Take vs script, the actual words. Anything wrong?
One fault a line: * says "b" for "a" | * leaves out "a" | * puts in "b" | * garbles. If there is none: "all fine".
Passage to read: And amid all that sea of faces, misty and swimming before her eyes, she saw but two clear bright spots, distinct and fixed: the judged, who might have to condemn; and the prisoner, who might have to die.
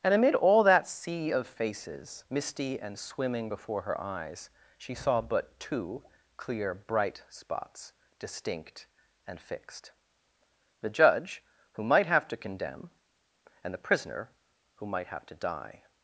* says "judge" for "judged"